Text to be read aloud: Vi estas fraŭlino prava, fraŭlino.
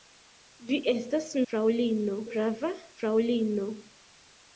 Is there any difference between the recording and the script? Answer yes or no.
no